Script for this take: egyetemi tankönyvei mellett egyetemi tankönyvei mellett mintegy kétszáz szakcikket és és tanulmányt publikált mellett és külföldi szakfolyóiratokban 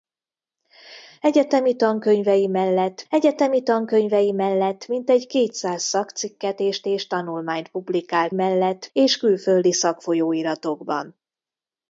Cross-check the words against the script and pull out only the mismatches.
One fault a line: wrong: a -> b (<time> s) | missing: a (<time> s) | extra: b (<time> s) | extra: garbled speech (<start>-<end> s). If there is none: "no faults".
no faults